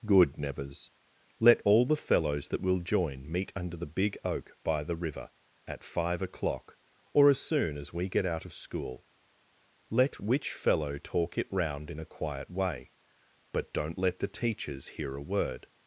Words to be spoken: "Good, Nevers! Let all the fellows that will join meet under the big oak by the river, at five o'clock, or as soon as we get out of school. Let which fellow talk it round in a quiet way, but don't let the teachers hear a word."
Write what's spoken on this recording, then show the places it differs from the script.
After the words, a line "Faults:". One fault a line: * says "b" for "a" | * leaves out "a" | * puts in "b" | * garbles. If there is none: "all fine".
"Good, Nevers! Let all the fellows that will join meet under the big oak by the river, at five o'clock, or as soon as we get out of school. Let which fellow talk it round in a quiet way, but don't let the teachers hear a word."
Faults:
all fine